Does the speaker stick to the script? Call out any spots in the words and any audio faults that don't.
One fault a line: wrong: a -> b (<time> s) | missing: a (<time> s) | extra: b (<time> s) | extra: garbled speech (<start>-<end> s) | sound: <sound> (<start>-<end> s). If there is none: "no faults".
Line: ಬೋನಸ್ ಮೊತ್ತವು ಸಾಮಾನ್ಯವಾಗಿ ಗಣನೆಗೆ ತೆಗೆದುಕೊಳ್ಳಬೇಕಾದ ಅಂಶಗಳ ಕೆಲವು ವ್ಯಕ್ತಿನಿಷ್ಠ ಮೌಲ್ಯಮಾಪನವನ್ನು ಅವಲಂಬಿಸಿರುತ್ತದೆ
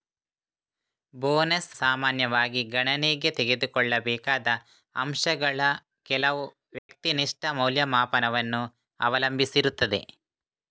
missing: ಮೊತ್ತವು (1.8 s)
sound: dropout (6.8-6.9 s)